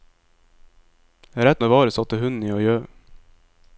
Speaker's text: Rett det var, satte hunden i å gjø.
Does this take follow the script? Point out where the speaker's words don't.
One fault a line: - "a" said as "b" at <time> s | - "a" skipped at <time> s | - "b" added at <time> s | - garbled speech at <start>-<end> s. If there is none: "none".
none